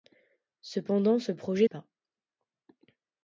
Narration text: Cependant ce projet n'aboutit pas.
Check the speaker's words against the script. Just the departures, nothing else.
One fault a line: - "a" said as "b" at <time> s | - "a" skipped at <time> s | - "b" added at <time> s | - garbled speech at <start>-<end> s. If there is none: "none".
- "n'aboutit" skipped at 1.7 s